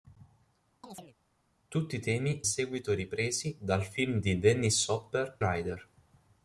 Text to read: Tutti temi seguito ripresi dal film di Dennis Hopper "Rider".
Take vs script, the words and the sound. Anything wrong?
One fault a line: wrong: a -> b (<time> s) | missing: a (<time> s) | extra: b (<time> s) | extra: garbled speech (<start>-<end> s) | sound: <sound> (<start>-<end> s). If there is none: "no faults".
sound: chirp (0.8-1.2 s)